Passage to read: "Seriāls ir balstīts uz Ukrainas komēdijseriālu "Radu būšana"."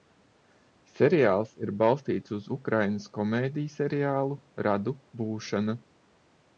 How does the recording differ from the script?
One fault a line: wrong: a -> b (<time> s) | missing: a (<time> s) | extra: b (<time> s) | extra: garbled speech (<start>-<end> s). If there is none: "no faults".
no faults